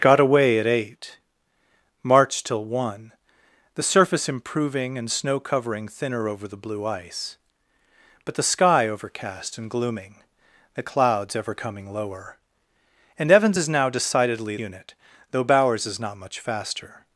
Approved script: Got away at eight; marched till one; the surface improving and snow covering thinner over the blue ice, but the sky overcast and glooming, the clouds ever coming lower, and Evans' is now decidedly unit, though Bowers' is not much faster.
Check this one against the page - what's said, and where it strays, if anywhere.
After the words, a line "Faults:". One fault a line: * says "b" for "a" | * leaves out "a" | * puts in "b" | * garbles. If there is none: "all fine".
Got away at eight; marched till one; the surface improving and snow covering thinner over the blue ice, but the sky overcast and glooming, the clouds ever coming lower, and Evans' is now decidedly unit, though Bowers' is not much faster.
Faults:
all fine